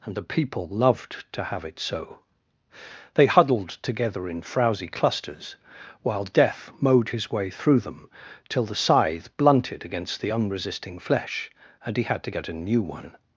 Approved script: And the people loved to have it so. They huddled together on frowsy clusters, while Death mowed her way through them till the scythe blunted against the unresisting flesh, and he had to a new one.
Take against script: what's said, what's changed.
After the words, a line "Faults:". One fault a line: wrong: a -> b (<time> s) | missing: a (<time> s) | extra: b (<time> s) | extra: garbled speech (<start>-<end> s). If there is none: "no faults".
And the people loved to have it so. They huddled together in frowsy clusters, while Death mowed his way through them till the scythe blunted against the unresisting flesh, and he had to get a new one.
Faults:
wrong: on -> in (4.3 s)
wrong: her -> his (7.1 s)
extra: get (12.3 s)